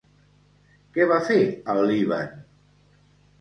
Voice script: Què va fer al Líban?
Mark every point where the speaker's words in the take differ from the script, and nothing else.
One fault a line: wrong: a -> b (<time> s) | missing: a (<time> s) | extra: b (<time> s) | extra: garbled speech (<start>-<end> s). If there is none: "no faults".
no faults